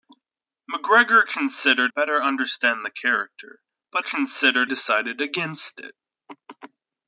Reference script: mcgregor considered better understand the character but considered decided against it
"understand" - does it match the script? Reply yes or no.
yes